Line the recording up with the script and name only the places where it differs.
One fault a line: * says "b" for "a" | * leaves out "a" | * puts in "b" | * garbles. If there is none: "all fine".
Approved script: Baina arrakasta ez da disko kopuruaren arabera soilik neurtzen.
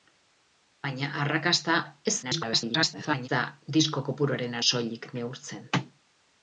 * garbles
* leaves out "arabera"